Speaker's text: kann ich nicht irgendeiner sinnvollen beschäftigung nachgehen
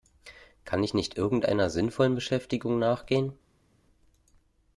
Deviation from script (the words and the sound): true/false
false